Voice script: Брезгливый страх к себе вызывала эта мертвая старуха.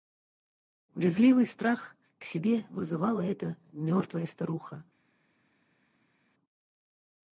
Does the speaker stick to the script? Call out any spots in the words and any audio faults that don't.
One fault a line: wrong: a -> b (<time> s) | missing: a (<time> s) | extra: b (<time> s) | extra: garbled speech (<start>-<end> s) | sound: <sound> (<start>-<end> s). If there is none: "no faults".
no faults